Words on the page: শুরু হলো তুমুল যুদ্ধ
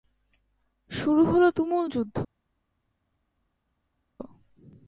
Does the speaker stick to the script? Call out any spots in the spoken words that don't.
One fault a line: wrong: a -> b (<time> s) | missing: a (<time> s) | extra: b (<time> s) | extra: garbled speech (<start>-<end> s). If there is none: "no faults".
no faults